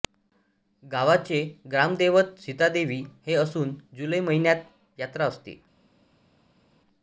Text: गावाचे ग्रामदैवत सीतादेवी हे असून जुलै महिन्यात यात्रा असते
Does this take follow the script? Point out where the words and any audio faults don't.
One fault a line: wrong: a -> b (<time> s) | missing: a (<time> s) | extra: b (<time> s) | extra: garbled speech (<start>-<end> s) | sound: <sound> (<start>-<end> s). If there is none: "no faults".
no faults